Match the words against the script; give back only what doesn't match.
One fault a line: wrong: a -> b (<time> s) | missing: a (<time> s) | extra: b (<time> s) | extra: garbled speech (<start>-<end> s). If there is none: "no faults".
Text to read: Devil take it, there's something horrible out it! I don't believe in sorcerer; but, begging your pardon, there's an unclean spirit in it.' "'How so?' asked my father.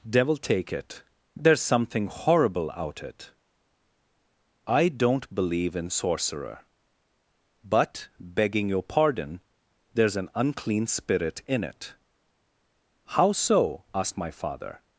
no faults